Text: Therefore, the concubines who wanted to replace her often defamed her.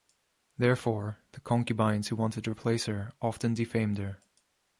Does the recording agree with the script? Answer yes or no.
yes